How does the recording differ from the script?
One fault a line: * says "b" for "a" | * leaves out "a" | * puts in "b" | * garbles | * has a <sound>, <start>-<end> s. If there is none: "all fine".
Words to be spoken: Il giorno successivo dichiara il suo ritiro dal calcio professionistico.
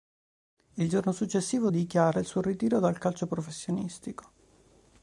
all fine